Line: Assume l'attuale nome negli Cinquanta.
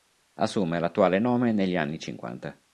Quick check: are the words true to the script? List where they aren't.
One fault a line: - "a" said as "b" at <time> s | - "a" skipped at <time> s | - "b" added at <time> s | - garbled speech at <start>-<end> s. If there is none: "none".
- "anni" added at 1.8 s